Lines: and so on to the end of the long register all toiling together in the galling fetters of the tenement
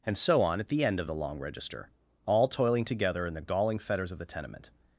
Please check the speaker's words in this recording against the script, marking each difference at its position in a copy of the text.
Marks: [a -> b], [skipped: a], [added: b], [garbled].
and so on [to -> at] the end of the long register all toiling together in the galling fetters of the tenement